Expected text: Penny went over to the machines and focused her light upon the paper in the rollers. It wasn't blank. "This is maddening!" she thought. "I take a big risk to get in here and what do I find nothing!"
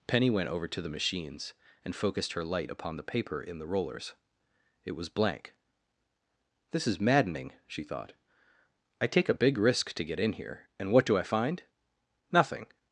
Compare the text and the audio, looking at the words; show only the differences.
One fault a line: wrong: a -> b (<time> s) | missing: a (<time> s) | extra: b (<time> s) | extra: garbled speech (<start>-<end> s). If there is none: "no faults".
wrong: wasn't -> was (4.9 s)